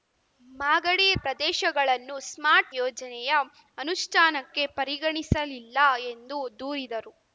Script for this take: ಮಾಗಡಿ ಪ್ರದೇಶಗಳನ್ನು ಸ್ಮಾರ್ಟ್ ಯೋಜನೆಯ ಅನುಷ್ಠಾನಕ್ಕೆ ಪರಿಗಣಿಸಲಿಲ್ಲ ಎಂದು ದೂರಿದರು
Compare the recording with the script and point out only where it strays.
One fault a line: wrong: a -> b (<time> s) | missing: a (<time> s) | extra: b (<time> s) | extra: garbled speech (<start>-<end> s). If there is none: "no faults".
no faults